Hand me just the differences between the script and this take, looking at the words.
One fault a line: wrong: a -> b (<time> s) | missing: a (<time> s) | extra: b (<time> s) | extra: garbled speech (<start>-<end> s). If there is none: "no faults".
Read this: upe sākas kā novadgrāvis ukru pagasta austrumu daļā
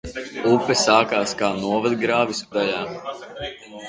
missing: ukru pagasta austrumu (2.4 s)